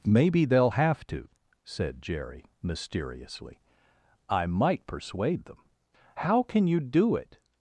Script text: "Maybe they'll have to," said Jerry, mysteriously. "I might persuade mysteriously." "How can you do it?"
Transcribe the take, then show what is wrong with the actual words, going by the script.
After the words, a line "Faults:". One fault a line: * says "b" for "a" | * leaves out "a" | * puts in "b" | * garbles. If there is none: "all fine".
"Maybe they'll have to," said Jerry, mysteriously. "I might persuade them." "How can you do it?"
Faults:
* says "them" for "mysteriously"